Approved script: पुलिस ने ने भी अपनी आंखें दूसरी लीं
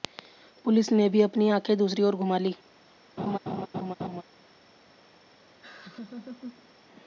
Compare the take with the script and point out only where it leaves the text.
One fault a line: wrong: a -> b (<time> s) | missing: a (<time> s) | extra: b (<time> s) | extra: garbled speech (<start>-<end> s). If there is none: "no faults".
missing: ने (1.1 s)
extra: ओर घुमा (2.0 s)